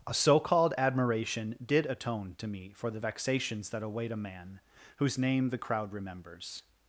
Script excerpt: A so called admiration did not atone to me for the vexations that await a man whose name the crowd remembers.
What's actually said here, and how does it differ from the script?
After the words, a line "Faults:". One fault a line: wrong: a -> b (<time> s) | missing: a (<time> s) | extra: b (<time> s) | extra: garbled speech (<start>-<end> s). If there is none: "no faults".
A so called admiration did atone to me for the vexations that await a man whose name the crowd remembers.
Faults:
missing: not (1.9 s)